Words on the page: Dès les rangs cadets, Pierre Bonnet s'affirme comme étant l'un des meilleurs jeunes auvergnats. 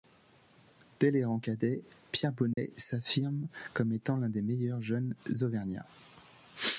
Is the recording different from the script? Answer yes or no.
no